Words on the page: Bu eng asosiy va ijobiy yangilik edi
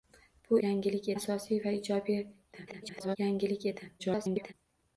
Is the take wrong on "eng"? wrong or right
wrong